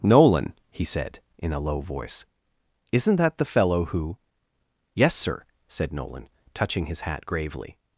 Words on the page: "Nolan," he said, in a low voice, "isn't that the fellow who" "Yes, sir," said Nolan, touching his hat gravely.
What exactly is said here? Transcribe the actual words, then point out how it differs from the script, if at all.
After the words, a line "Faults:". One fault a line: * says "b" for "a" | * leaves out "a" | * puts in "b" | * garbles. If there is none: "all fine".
"Nolan," he said, in a low voice, "isn't that the fellow who" "Yes, sir," said Nolan, touching his hat gravely.
Faults:
all fine